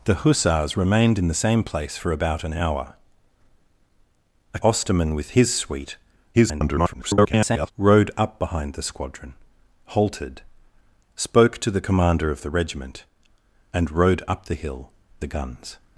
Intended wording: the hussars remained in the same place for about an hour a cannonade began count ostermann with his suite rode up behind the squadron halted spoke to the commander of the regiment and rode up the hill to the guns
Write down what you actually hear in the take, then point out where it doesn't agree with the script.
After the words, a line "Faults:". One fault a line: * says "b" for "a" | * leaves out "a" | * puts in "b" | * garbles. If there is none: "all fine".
the hussars remained in the same place for about an hour a ostermann with his suite [garbled] rode up behind the squadron halted spoke to the commander of the regiment and rode up the hill the guns
Faults:
* leaves out "cannonade began count"
* garbles
* leaves out "to"